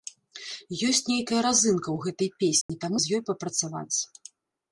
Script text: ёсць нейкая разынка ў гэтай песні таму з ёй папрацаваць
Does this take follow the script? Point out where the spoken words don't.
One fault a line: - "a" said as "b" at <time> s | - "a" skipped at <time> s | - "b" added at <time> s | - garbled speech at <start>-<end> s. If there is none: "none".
none